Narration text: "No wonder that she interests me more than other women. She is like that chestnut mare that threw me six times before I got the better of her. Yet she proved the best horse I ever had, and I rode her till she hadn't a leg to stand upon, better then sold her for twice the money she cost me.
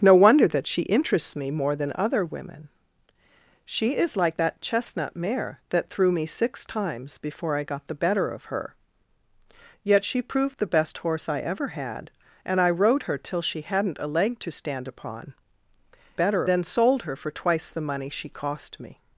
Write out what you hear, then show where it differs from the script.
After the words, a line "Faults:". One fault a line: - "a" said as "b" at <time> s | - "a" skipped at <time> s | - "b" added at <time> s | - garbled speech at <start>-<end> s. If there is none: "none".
"No wonder that she interests me more than other women. She is like that chestnut mare that threw me six times before I got the better of her. Yet she proved the best horse I ever had, and I rode her till she hadn't a leg to stand upon, better then sold her for twice the money she cost me.
Faults:
none